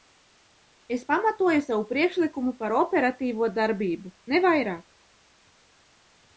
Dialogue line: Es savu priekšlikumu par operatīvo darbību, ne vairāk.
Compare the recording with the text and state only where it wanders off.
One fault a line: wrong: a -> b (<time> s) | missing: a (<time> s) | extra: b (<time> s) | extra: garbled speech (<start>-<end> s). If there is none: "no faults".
extra: pamatoju (1.1 s)